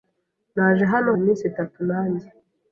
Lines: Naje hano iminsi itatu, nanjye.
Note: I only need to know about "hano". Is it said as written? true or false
true